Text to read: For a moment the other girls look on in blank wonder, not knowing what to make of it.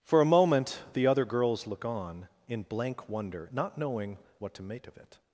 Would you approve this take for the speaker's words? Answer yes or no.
yes